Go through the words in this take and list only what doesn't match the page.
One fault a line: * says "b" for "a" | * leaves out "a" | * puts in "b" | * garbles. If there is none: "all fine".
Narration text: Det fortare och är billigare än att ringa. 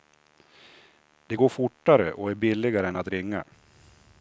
* puts in "går"